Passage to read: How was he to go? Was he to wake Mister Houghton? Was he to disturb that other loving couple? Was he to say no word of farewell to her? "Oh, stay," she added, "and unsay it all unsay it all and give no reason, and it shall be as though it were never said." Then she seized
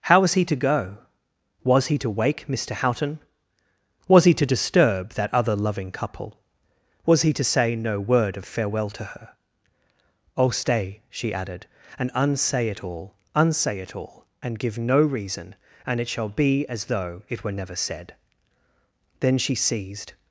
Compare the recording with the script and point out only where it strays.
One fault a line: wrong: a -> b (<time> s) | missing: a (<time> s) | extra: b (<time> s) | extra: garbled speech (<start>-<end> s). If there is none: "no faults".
no faults